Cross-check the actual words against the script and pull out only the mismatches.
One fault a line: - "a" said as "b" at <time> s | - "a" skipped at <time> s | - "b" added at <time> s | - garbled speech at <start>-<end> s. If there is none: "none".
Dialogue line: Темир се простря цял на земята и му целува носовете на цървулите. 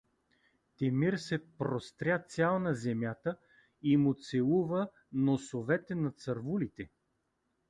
none